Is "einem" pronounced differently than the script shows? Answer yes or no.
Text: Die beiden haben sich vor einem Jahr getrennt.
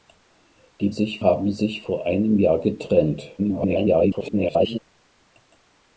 no